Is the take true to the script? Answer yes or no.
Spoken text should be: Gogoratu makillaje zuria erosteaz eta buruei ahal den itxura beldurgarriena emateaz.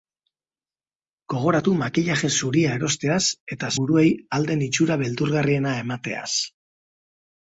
yes